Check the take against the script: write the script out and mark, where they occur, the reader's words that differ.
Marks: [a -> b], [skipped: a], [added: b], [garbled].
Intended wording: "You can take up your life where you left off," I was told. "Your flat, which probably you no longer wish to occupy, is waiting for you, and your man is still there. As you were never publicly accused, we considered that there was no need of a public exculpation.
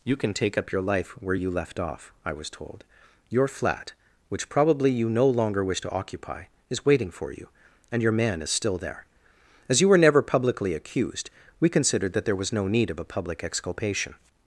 "You can take up your life where you left off," I was told. "Your flat, which probably you no longer wish to occupy, is waiting for you, and your man is still there. As you were never publicly accused, we considered that there was no need of a public exculpation.